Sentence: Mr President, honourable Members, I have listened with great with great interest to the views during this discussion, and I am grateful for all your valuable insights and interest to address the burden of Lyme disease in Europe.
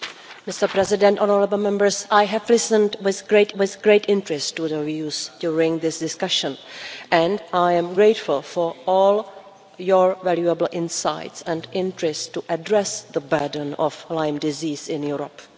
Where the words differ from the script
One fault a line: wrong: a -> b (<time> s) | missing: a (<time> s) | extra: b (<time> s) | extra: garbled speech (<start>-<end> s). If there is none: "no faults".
no faults